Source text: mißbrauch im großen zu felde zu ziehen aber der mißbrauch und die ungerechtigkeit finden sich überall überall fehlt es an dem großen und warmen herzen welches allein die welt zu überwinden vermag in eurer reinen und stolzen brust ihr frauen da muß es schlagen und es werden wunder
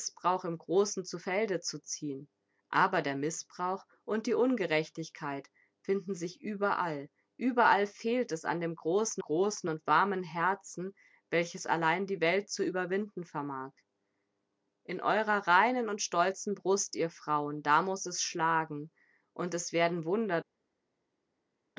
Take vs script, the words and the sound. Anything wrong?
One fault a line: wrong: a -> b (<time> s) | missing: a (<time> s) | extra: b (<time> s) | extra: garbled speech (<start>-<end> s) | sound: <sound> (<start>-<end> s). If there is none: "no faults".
extra: großen (9.2 s)